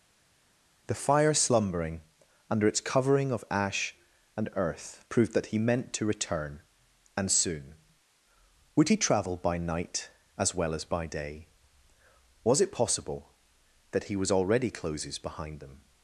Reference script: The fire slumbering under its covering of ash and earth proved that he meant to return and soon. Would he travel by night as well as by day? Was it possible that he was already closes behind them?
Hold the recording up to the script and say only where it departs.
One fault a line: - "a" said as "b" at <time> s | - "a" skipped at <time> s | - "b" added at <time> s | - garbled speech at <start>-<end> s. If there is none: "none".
none